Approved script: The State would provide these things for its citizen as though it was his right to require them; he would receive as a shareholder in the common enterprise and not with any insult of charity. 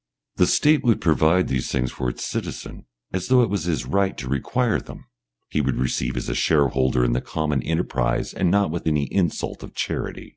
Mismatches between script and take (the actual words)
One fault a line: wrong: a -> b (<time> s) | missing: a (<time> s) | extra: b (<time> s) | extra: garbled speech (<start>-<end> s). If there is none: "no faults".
no faults